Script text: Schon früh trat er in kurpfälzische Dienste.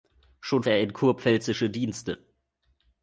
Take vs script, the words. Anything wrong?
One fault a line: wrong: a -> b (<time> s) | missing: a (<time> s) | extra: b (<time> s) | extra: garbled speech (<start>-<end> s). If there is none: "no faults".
missing: früh trat (0.6 s)